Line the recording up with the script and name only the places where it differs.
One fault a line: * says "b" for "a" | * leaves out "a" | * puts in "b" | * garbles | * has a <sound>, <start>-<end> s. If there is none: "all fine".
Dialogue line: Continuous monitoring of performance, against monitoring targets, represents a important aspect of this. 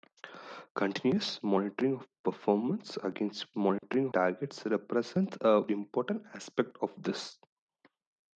* has a dropout, 3.8-3.8 s